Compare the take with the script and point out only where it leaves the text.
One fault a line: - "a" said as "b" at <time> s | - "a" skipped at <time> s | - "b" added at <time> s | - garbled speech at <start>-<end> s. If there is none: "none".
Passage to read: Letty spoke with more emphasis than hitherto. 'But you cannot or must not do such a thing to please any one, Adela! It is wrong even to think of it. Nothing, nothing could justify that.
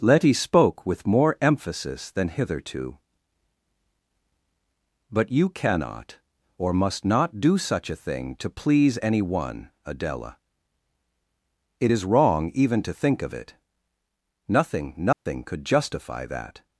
none